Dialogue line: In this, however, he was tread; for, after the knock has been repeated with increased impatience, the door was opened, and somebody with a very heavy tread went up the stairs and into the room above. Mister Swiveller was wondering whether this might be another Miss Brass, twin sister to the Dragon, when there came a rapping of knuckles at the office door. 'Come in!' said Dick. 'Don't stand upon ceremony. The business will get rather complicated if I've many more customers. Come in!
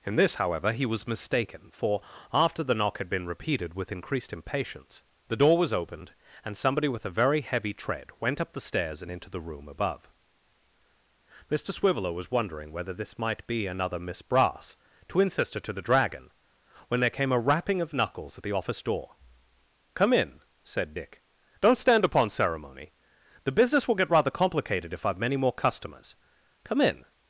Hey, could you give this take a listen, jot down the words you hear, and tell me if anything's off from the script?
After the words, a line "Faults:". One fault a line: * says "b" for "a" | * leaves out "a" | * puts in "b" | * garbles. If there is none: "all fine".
In this, however, he was mistaken; for, after the knock had been repeated with increased impatience, the door was opened, and somebody with a very heavy tread went up the stairs and into the room above. Mister Swiveller was wondering whether this might be another Miss Brass, twin sister to the Dragon, when there came a rapping of knuckles at the office door. 'Come in!' said Dick. 'Don't stand upon ceremony. The business will get rather complicated if I've many more customers. Come in!
Faults:
* says "mistaken" for "tread"
* says "had" for "has"